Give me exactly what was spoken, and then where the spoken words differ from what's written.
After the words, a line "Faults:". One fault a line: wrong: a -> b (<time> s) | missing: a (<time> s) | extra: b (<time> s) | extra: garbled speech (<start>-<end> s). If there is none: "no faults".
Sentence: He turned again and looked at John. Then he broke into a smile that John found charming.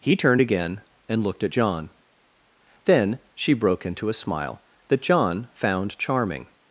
He turned again and looked at John. Then she broke into a smile that John found charming.
Faults:
wrong: he -> she (3.3 s)